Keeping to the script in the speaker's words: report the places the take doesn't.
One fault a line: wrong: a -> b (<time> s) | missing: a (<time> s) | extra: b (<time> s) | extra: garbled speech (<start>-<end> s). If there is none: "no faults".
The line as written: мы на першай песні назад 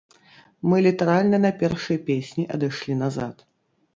extra: літаральна (0.8 s)
extra: адышлі (2.6 s)